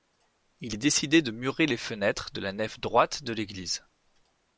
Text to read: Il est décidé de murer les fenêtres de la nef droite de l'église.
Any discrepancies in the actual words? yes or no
no